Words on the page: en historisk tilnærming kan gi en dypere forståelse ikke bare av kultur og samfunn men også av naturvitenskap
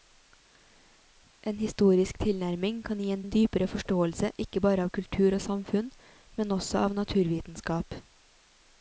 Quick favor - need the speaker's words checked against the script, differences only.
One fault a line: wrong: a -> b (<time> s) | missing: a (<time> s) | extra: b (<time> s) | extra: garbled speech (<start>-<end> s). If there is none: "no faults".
extra: en (3.2 s)